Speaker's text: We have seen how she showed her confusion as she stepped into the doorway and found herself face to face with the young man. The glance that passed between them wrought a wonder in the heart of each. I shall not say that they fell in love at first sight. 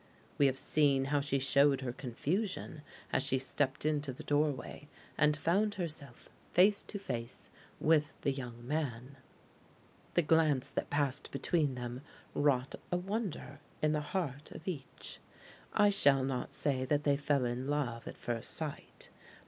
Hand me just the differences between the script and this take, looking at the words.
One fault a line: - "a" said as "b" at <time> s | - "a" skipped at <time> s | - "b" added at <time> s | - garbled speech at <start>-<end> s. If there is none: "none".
none